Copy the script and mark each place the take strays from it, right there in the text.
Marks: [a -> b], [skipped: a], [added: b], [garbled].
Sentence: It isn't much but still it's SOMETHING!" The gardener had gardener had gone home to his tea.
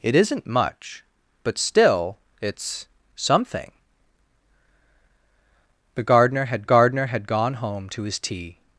It isn't much but still it's SOMETHING!" The gardener had gardener had gone home to his tea.